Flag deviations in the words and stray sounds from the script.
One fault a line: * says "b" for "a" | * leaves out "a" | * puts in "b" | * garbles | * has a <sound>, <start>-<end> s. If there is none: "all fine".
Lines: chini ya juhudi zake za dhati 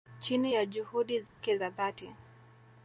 * has a dropout, 1.3-1.4 s